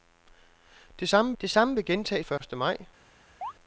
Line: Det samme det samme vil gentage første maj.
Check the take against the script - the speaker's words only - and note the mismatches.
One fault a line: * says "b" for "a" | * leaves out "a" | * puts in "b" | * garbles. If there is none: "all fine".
all fine